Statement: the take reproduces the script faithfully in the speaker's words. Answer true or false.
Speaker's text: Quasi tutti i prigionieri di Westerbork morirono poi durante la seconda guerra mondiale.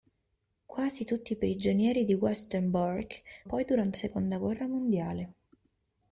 false